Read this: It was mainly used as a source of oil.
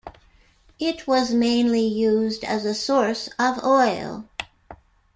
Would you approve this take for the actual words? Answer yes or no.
yes